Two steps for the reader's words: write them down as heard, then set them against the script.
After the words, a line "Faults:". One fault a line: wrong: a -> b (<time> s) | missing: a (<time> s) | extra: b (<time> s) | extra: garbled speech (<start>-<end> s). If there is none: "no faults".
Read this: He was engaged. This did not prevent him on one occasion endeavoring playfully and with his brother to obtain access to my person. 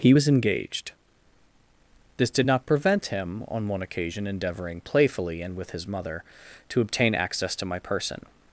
He was engaged. This did not prevent him on one occasion endeavoring playfully and with his mother to obtain access to my person.
Faults:
wrong: brother -> mother (5.9 s)